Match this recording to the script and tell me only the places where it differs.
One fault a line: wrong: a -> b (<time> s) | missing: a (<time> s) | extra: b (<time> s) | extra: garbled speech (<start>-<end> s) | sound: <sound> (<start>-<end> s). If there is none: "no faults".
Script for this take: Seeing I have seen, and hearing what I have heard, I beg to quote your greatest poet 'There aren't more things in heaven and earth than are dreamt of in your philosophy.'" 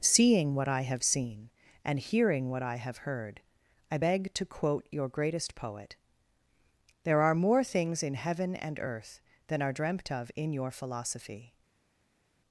extra: what (0.6 s)
wrong: aren't -> are (7.2 s)